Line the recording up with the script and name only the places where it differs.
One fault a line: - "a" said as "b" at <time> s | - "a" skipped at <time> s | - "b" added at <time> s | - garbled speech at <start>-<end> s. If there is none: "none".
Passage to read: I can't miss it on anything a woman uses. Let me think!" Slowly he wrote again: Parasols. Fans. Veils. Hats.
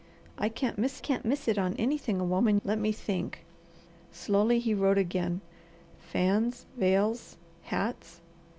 - "can't miss" added at 1.0 s
- "uses" skipped at 2.6 s
- "Parasols" skipped at 5.4 s